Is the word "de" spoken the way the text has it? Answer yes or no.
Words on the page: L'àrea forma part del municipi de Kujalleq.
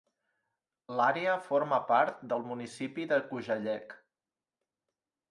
yes